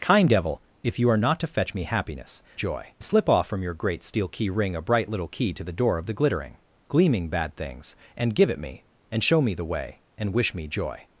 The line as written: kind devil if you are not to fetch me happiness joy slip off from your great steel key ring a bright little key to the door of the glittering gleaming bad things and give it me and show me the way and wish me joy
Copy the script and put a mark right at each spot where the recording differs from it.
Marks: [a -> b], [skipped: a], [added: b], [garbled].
kind devil if you are not to fetch me happiness joy slip off from your great steel key ring a bright little key to the door of the glittering gleaming bad things and give it me and show me the way and wish me joy